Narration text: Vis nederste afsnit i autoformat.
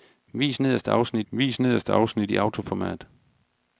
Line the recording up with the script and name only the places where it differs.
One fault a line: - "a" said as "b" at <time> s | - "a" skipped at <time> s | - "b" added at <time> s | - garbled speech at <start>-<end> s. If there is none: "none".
- "vis nederste afsnit" added at 1.3 s